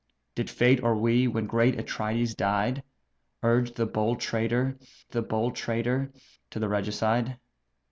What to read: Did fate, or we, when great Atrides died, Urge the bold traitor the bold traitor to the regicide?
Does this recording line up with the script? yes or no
yes